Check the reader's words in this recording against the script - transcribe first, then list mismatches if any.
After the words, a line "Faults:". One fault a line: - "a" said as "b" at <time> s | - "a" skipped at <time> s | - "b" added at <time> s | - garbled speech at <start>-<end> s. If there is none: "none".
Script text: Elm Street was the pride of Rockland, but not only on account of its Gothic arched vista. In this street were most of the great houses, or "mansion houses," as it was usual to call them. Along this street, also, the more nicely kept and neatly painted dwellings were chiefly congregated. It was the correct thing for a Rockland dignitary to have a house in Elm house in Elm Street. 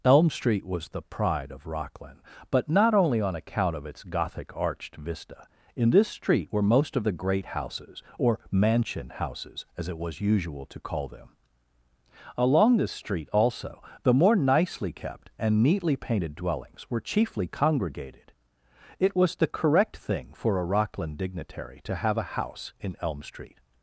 Elm Street was the pride of Rockland, but not only on account of its Gothic arched vista. In this street were most of the great houses, or "mansion houses," as it was usual to call them. Along this street, also, the more nicely kept and neatly painted dwellings were chiefly congregated. It was the correct thing for a Rockland dignitary to have a house in Elm Street.
Faults:
- "house in Elm" skipped at 23.2 s